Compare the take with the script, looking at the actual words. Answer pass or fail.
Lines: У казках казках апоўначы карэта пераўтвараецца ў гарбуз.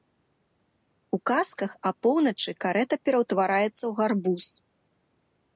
fail